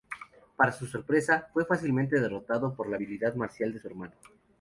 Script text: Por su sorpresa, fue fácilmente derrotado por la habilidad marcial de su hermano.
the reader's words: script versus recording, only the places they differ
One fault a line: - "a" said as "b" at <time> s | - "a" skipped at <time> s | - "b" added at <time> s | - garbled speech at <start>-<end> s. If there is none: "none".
- "Por" said as "Para" at 0.6 s